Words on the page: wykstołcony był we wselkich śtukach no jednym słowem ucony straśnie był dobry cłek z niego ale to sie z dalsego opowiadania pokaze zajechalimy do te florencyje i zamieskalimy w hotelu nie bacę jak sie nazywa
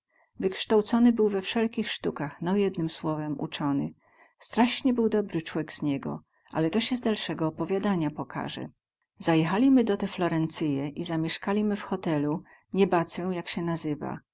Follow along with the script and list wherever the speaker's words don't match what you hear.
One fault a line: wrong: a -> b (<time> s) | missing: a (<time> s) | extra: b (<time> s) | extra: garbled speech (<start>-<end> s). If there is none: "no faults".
no faults